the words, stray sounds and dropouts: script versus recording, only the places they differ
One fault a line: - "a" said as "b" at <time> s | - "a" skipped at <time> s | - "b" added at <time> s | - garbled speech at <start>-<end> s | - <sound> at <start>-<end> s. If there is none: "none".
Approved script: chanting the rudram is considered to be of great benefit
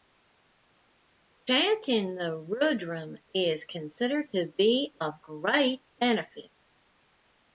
none